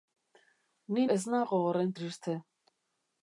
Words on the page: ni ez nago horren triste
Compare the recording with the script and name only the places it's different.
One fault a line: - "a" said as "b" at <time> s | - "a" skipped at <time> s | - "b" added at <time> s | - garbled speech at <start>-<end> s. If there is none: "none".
none